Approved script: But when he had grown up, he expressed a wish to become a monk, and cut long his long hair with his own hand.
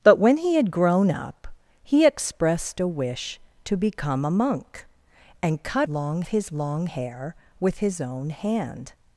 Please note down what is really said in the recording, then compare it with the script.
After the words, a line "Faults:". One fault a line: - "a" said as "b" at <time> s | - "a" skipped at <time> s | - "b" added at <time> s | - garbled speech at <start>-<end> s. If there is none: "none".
But when he had grown up, he expressed a wish to become a monk, and cut long his long hair with his own hand.
Faults:
none